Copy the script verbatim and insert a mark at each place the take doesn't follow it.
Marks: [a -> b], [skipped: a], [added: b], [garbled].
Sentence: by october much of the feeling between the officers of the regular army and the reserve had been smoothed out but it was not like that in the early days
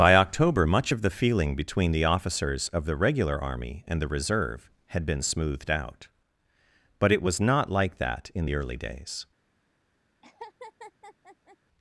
by october much of the feeling between the officers of the regular army and the reserve had been smoothed out but it was not like that in the early days